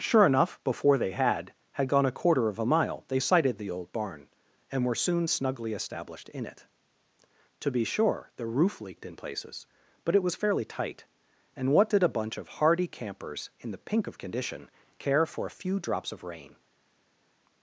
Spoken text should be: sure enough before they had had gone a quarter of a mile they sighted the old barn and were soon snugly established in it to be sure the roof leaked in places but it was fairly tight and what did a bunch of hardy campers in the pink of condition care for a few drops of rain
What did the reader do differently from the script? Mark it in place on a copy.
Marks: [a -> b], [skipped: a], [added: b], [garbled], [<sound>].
sure enough before they had had gone a quarter of a mile they sighted the old barn and were soon snugly established in it to be sure the roof leaked in places but it was fairly tight and what did a bunch of hardy campers in the pink of condition care for a few drops of rain